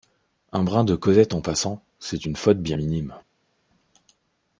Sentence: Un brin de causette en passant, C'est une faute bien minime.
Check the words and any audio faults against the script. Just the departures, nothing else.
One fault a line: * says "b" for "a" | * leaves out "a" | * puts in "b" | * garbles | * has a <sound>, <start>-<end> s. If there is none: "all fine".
all fine